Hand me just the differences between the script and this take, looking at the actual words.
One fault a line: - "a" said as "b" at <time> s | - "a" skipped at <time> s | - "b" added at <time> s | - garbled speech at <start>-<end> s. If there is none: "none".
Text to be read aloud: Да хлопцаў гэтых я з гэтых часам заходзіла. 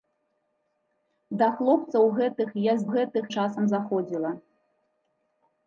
none